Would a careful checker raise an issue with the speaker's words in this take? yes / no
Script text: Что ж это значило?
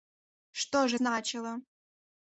yes